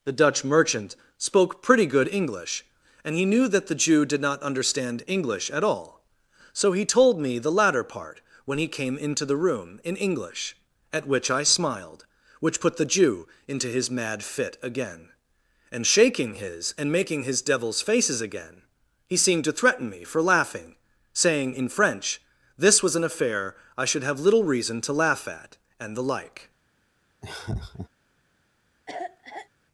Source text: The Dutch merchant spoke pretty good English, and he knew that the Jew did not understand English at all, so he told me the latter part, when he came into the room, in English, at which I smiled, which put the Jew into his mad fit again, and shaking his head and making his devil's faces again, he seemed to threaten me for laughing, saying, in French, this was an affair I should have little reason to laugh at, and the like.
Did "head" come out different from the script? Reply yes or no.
yes